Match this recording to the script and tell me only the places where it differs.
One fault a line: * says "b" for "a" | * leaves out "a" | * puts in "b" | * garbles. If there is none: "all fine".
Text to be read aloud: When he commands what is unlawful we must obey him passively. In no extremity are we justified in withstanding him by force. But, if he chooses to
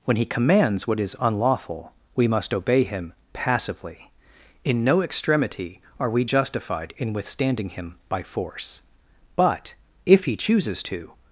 all fine